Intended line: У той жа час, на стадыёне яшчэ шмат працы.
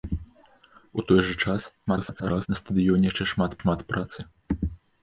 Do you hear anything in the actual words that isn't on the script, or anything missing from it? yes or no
yes